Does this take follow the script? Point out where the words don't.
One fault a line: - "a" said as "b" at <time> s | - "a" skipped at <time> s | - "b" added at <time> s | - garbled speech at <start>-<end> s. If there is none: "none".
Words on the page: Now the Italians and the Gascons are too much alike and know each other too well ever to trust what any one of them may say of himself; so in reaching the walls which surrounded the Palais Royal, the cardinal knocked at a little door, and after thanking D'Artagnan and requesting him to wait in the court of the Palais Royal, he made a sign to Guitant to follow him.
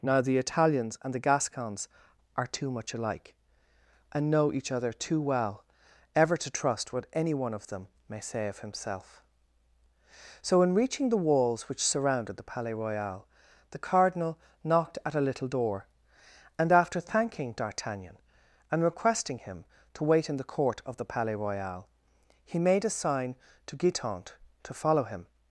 none